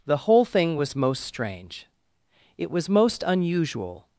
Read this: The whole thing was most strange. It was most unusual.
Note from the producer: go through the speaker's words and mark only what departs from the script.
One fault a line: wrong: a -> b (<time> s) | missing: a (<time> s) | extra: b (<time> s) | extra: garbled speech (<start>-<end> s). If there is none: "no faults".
no faults